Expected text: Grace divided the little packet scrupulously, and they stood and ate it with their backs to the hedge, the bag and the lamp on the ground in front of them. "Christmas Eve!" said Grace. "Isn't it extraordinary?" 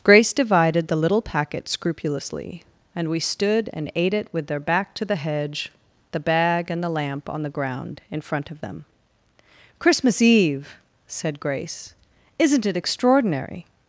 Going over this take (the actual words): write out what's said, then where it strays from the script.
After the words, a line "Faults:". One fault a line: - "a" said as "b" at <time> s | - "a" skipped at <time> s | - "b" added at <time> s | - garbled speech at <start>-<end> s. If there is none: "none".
Grace divided the little packet scrupulously, and we stood and ate it with their back to the hedge, the bag and the lamp on the ground in front of them. "Christmas Eve!" said Grace. "Isn't it extraordinary?"
Faults:
- "they" said as "we" at 3.1 s
- "backs" said as "back" at 4.6 s